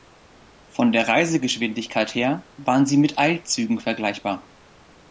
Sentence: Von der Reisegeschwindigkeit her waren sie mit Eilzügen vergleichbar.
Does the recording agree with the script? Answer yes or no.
yes